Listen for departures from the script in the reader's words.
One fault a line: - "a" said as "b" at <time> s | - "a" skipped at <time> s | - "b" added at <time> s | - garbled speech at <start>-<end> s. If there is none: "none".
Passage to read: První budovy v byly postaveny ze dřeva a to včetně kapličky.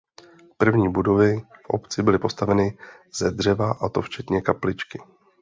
- "obci" added at 1.7 s